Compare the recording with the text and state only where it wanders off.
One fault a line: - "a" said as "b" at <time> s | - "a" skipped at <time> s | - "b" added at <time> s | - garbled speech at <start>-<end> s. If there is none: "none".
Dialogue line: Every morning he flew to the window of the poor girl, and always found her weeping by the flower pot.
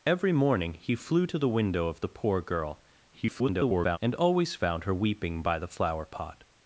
- garbled speech at 3.1-4.0 s